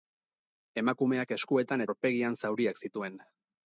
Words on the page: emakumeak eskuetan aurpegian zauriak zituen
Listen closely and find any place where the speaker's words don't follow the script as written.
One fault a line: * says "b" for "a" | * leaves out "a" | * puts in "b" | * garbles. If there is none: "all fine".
all fine